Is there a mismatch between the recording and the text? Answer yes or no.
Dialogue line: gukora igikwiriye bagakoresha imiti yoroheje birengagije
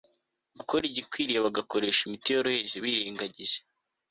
no